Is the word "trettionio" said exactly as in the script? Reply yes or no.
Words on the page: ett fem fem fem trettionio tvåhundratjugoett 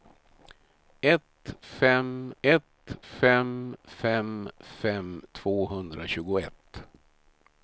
no